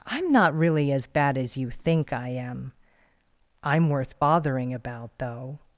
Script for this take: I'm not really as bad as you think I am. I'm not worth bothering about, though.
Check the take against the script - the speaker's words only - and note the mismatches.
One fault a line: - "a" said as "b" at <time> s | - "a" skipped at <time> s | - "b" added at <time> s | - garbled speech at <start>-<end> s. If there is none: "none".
- "not" skipped at 3.9 s